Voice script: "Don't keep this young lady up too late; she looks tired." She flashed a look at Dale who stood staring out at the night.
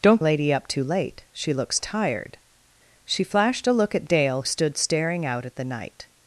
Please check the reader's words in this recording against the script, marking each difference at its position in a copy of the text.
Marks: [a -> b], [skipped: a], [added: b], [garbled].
"Don't [skipped: keep this young] lady up too late; she looks tired." She flashed a look at Dale [skipped: who] stood staring out at the night.